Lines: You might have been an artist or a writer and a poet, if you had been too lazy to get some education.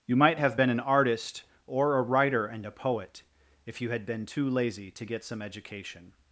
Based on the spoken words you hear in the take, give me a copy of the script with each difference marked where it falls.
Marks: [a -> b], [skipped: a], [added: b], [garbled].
You might have been an artist or a writer and a poet, if you had been too lazy to get some education.